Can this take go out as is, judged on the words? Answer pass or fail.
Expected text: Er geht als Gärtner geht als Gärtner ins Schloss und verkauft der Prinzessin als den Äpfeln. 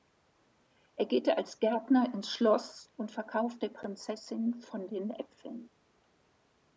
fail